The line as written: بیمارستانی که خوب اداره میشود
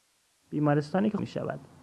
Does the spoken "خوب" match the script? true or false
false